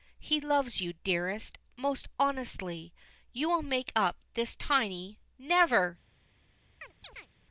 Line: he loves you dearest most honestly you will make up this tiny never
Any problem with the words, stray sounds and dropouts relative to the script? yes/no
yes